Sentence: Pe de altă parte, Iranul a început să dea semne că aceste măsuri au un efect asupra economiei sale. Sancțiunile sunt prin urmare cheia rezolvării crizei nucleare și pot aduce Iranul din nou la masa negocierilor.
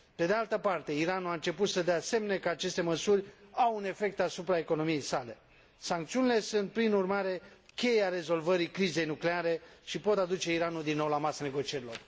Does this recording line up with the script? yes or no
yes